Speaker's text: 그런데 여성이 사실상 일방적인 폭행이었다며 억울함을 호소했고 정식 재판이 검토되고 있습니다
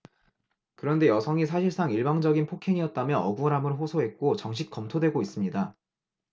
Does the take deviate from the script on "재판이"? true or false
true